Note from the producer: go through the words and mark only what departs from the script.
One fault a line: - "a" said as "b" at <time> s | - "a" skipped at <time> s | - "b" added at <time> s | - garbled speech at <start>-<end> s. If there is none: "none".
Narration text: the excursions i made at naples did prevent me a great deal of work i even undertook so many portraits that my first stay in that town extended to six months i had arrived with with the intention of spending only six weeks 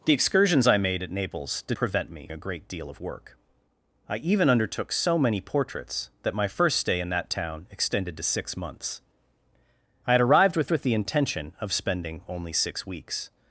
none